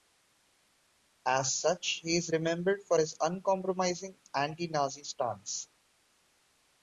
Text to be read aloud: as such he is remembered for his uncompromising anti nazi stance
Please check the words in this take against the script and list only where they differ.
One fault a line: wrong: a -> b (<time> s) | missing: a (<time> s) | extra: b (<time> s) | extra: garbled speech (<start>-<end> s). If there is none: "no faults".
no faults